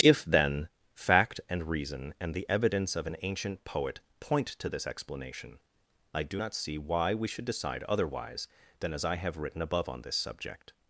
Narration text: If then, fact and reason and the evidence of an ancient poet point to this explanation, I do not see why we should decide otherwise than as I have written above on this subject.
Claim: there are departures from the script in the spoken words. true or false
false